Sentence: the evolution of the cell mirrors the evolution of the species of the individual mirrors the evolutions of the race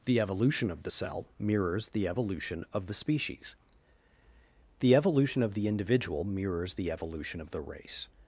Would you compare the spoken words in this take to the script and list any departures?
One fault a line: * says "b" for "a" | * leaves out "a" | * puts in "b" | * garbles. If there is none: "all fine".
* puts in "the evolution"
* says "evolution" for "evolutions"